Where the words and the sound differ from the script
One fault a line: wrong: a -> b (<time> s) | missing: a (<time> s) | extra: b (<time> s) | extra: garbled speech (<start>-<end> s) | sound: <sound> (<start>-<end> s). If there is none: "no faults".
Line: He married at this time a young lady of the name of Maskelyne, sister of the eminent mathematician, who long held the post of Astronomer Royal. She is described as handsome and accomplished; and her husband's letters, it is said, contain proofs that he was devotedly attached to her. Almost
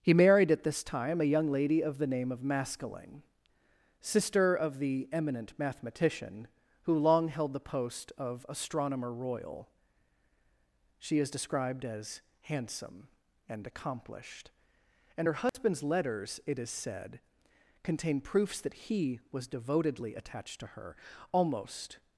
sound: dropout (15.5-15.5 s)